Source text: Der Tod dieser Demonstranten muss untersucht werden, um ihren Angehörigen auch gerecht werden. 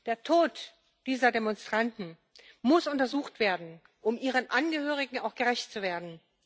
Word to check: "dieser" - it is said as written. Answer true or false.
true